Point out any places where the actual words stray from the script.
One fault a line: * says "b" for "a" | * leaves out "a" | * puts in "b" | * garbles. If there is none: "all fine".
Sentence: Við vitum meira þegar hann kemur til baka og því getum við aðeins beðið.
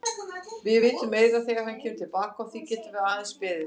all fine